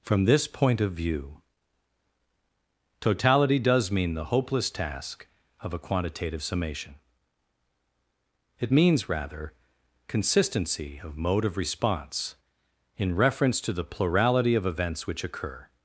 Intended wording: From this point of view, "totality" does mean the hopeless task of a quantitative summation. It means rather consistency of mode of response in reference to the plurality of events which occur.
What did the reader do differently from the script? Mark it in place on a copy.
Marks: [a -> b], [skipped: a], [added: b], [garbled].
From this point of view, "totality" does mean the hopeless task of a quantitative summation. It means rather consistency of mode of response in reference to the plurality of events which occur.